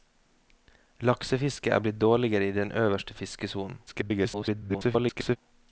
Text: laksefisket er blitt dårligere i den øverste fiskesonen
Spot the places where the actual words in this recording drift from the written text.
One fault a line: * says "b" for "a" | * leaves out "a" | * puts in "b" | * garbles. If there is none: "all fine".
* garbles